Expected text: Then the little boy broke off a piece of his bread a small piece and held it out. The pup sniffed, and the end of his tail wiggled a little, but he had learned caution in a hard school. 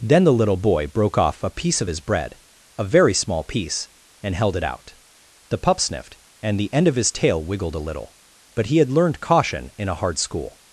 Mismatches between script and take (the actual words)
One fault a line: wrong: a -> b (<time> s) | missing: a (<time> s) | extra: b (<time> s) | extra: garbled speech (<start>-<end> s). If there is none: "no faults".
extra: very (2.8 s)